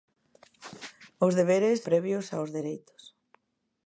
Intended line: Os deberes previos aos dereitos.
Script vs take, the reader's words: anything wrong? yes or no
no